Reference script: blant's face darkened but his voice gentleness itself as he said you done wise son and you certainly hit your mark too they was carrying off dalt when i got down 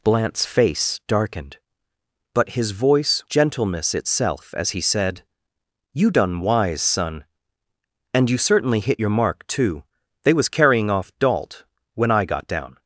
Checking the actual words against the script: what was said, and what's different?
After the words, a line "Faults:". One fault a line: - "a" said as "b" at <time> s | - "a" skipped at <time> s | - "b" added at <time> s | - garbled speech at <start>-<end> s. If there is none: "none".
blant's face darkened but his voice gentleness itself as he said you done wise son and you certainly hit your mark too they was carrying off dalt when i got down
Faults:
none